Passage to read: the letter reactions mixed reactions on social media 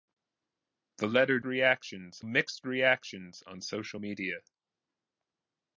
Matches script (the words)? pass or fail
pass